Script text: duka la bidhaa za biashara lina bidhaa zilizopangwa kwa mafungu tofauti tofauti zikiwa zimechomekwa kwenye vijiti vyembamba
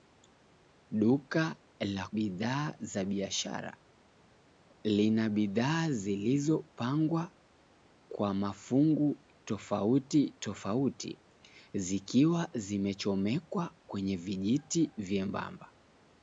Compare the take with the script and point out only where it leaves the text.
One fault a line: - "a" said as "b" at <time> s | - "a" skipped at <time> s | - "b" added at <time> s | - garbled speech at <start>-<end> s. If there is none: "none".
none